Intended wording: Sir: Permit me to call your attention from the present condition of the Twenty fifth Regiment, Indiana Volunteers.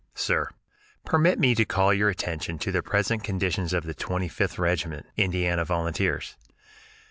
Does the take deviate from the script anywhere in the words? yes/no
yes